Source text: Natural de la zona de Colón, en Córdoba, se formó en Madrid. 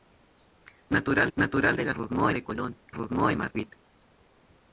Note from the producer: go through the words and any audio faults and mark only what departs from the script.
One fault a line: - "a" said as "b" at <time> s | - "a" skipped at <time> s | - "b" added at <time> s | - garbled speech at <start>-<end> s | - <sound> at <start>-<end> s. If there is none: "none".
- "natural" added at 1.4 s
- "zona" said as "formó" at 1.9 s
- "en Córdoba se" skipped at 2.8 s
- dropout at 3.5-3.6 s